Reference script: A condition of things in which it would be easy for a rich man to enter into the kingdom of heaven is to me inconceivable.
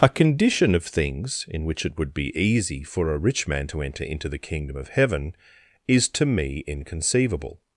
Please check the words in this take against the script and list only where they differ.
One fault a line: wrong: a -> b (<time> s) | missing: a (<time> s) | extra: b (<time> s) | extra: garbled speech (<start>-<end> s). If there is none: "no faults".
no faults